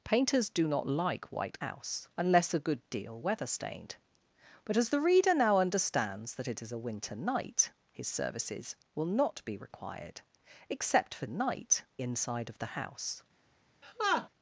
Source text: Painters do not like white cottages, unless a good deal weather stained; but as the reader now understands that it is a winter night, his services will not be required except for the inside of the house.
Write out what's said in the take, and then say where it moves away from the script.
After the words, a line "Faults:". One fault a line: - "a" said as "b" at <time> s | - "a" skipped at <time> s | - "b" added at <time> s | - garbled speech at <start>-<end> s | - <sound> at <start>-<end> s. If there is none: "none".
Painters do not like white house, unless a good deal weather stained; but as the reader now understands that it is a winter night, his services will not be required except for night inside of the house.
Faults:
- "cottages" said as "house" at 1.6 s
- "the" said as "night" at 11.3 s
- laugh at 13.8-14.3 s